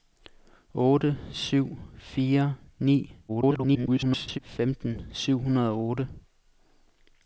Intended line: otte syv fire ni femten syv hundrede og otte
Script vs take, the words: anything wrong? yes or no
yes